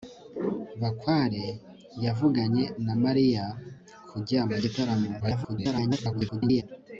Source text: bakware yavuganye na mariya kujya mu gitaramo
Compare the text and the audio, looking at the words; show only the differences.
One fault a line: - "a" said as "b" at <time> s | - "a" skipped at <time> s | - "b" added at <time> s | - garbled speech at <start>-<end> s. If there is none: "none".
- garbled speech at 5.2-6.6 s